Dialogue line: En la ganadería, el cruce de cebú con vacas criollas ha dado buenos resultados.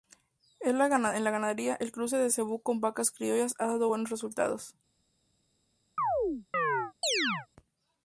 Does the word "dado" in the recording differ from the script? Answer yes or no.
no